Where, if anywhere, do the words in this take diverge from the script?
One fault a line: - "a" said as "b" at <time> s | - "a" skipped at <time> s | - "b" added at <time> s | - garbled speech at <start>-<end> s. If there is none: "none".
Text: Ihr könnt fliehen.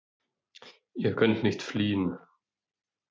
- "nicht" added at 1.4 s